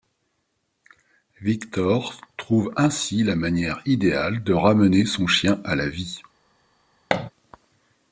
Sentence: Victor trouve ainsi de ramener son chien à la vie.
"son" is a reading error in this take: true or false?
false